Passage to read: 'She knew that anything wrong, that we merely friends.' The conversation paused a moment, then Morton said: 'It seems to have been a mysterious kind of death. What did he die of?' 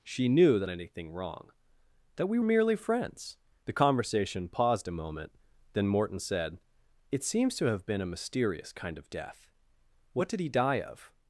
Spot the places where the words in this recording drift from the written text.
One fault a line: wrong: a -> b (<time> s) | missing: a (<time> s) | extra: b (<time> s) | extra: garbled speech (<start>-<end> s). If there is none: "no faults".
no faults